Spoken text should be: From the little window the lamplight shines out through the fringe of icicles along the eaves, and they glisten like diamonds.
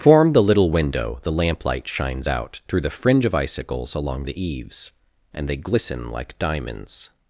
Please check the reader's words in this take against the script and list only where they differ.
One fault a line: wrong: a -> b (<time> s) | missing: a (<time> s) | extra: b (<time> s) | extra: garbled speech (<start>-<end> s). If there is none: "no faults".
wrong: From -> Form (0.0 s)